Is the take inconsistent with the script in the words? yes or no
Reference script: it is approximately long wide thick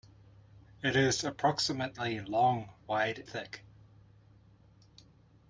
no